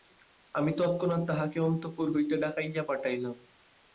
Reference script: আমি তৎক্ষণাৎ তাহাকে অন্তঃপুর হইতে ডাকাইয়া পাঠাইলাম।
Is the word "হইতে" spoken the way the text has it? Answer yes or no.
yes